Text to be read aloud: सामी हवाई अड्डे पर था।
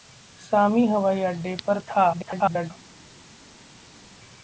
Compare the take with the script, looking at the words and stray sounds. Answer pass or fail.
fail